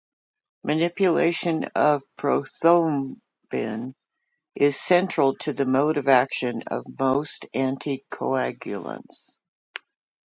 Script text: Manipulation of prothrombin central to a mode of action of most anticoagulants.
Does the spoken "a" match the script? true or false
false